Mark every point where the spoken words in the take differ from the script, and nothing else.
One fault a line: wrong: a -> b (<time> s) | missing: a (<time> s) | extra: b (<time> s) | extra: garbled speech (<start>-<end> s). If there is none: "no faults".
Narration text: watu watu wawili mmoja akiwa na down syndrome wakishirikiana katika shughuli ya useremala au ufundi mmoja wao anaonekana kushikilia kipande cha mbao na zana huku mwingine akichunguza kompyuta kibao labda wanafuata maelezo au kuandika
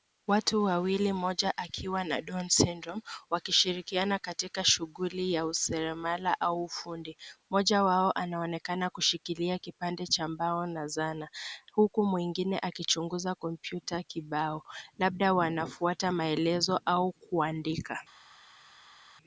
missing: watu (0.6 s)